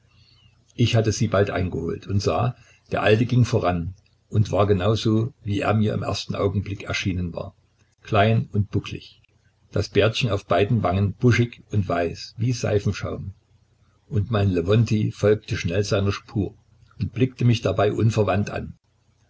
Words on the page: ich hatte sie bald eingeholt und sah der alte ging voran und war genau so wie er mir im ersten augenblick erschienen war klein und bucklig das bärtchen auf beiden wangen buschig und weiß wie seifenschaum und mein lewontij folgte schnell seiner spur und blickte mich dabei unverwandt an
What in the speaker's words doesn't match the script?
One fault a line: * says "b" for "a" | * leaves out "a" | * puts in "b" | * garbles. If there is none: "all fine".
all fine